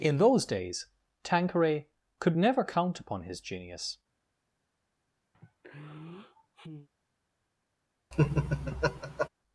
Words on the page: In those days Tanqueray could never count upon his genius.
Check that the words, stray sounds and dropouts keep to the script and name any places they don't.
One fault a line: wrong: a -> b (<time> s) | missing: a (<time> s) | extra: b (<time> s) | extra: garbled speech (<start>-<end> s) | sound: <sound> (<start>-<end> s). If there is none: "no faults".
sound: sigh (5.3-6.9 s)
sound: laugh (8.1-9.3 s)